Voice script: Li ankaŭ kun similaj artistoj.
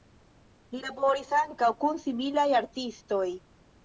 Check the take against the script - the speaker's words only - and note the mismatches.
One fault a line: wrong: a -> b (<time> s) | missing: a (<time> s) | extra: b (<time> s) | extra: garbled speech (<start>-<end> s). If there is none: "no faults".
extra: laboris (0.8 s)